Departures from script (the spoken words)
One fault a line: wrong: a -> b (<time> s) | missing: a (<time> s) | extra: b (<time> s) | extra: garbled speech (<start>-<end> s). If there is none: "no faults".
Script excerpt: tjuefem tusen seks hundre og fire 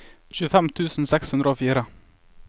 no faults